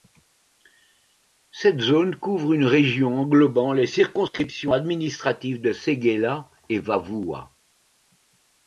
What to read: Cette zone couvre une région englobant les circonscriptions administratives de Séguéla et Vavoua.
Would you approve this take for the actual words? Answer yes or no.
yes